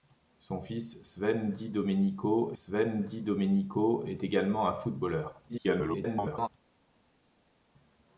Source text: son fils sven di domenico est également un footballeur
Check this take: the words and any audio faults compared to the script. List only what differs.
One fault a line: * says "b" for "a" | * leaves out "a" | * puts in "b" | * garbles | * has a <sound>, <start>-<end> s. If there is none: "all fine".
* puts in "sven di domenico"
* garbles